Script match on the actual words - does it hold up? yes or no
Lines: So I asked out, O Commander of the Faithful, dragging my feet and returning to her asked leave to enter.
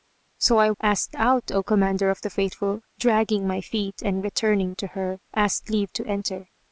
yes